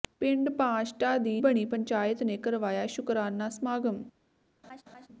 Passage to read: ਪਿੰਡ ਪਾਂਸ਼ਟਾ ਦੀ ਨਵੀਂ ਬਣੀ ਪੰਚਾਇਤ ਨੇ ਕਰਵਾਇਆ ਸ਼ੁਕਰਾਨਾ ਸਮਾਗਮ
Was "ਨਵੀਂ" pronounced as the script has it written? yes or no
no